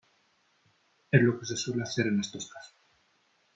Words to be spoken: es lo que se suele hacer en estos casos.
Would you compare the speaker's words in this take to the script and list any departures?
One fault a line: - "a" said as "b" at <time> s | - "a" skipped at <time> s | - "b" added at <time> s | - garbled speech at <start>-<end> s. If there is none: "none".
none